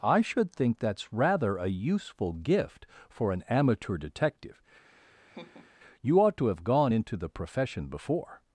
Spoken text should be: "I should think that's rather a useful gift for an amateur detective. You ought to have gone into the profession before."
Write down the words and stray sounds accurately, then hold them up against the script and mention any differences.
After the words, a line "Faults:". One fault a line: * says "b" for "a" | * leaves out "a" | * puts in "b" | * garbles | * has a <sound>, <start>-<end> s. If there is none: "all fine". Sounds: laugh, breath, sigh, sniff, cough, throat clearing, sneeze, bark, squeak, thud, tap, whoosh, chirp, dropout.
"I should think that's rather a useful gift for an amateur detective. You ought to have gone into the profession before."
Faults:
* has a laugh, 4.9-5.7 s